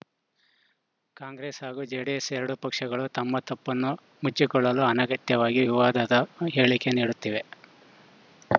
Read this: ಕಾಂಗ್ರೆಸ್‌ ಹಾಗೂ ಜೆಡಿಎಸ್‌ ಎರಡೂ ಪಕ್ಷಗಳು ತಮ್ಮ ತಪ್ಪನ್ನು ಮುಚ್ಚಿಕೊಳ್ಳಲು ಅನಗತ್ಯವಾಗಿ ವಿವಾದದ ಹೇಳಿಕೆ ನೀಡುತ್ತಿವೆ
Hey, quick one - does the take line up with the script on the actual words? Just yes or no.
yes